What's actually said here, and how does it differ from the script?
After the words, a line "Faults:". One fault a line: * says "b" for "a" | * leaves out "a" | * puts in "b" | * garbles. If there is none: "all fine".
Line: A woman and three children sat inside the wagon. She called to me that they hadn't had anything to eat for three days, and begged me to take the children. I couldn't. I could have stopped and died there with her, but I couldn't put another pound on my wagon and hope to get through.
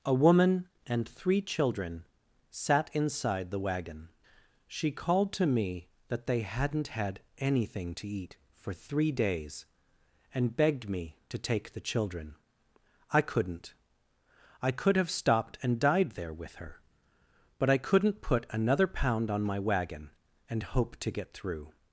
A woman and three children sat inside the wagon. She called to me that they hadn't had anything to eat for three days, and begged me to take the children. I couldn't. I could have stopped and died there with her, but I couldn't put another pound on my wagon and hope to get through.
Faults:
all fine